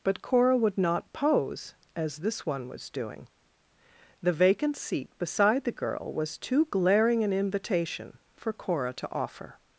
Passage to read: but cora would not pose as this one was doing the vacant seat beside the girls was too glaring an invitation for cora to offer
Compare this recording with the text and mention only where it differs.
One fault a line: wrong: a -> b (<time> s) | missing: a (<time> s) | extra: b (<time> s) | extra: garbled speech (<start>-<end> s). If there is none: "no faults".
wrong: girls -> girl (5.7 s)